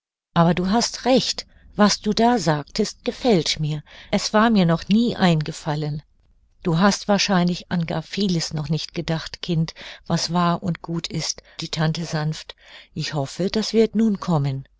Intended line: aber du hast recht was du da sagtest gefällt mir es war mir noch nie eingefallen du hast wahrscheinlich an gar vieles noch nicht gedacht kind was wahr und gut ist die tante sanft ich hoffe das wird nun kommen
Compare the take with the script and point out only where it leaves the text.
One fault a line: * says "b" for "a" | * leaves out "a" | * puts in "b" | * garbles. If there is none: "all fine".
all fine